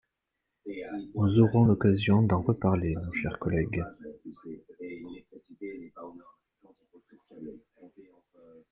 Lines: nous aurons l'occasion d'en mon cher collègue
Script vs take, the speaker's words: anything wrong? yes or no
yes